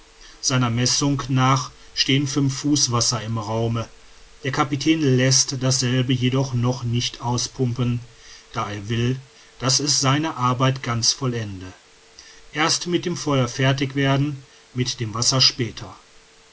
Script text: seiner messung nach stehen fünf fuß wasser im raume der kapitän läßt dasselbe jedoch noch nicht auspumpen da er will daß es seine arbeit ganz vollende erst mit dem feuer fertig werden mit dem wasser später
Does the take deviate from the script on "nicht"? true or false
false